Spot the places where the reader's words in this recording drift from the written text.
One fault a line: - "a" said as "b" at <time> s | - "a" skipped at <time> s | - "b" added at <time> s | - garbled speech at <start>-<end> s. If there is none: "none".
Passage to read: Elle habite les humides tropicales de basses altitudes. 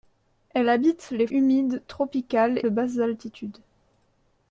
none